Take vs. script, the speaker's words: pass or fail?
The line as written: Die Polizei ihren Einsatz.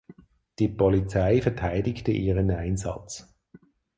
fail